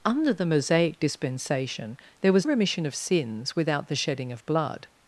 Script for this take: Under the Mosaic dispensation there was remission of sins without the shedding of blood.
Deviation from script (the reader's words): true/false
false